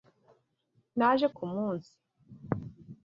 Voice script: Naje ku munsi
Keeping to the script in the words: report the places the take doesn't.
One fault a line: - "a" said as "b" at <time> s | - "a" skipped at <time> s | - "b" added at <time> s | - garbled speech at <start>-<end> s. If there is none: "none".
none